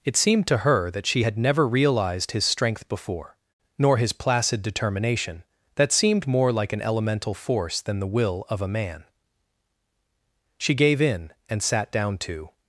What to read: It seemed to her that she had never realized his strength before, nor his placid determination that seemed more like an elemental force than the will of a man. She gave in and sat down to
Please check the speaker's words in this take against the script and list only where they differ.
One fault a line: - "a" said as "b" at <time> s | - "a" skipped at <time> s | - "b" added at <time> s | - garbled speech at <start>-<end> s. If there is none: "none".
none